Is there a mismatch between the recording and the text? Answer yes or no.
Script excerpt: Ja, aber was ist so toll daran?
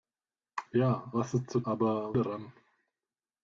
yes